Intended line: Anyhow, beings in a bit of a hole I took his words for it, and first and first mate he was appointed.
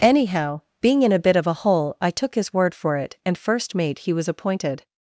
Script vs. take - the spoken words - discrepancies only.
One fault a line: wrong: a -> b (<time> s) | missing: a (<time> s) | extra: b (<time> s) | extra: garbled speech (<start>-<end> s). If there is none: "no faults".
wrong: beings -> being (0.8 s)
wrong: words -> word (2.5 s)
missing: and first (3.8 s)